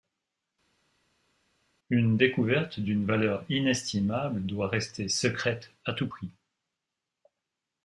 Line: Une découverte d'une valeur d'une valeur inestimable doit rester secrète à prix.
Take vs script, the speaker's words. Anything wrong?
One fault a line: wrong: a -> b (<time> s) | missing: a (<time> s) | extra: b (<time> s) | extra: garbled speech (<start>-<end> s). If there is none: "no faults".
missing: d'une valeur (3.4 s)
extra: tout (5.9 s)